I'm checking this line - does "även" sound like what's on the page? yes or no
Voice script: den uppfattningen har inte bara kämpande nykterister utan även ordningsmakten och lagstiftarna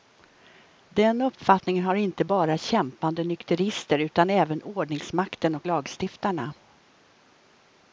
yes